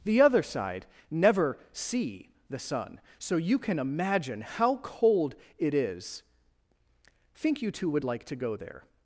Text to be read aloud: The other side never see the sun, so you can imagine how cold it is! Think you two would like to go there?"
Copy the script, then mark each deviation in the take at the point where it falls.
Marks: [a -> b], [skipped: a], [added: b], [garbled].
The other side never see the sun, so you can imagine how cold it is! Think you two would like to go there?"